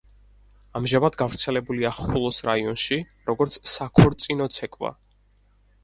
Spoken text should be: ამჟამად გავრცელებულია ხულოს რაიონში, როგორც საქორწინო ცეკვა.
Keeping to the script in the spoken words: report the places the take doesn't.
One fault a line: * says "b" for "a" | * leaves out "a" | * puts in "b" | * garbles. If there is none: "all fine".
all fine